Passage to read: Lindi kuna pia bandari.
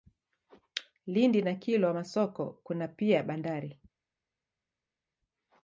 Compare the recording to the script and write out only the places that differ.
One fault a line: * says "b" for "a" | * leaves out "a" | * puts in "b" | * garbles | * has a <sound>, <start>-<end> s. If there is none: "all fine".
* puts in "na Kilwa Masoko"